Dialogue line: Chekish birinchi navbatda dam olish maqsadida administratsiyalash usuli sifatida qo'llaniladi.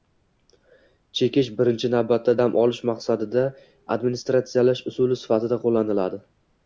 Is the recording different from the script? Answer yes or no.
no